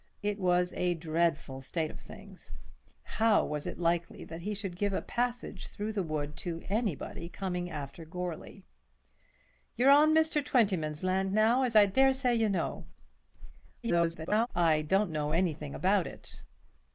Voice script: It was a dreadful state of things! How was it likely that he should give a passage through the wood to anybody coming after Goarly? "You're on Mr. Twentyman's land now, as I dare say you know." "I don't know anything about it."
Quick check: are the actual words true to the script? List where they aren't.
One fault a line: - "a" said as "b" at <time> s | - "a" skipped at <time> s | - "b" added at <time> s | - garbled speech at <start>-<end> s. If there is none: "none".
- garbled speech at 13.8-14.5 s